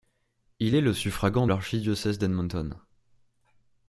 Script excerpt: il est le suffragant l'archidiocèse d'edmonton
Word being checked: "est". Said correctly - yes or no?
yes